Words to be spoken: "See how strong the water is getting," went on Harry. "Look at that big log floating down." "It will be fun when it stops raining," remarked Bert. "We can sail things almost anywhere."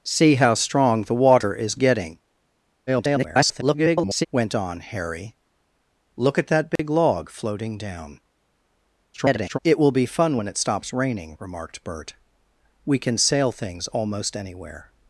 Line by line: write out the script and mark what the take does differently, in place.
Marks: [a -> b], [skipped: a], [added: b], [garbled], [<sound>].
"See how strong the water is getting," [garbled] went on Harry. "Look at that big [dropout] log floating down." [garbled] "It will be fun when it stops raining," remarked Bert. "We can sail things almost anywhere."